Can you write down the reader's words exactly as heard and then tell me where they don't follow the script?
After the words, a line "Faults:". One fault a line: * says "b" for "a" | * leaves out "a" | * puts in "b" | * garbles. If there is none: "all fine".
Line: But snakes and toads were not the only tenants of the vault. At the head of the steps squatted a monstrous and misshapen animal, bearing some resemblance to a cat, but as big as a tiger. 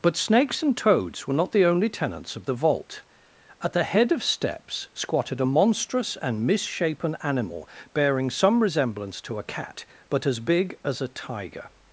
But snakes and toads were not the only tenants of the vault. At the head of steps squatted a monstrous and misshapen animal, bearing some resemblance to a cat, but as big as a tiger.
Faults:
* leaves out "the"